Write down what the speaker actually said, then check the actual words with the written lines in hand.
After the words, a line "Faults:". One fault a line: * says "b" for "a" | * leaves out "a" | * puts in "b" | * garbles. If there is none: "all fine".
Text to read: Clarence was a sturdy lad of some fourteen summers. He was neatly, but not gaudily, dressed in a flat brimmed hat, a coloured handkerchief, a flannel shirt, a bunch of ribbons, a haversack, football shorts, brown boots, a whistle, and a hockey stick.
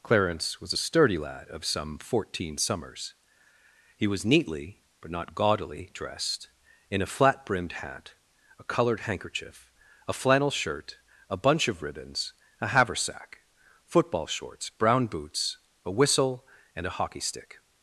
Clarence was a sturdy lad of some fourteen summers. He was neatly, but not gaudily, dressed in a flat brimmed hat, a coloured handkerchief, a flannel shirt, a bunch of ribbons, a haversack, football shorts, brown boots, a whistle, and a hockey stick.
Faults:
all fine